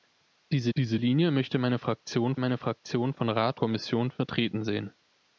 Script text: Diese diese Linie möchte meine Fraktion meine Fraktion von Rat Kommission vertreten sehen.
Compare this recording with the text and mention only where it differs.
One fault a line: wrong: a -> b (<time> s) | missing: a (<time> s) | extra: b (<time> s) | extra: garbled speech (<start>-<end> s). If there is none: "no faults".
no faults